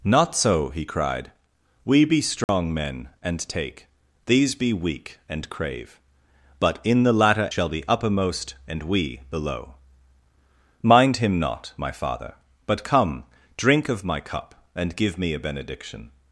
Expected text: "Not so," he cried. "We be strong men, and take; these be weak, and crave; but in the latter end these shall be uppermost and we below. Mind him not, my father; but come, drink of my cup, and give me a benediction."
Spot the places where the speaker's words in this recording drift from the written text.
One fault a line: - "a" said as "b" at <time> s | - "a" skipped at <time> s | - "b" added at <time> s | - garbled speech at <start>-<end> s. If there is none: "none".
- "end these" skipped at 7.5 s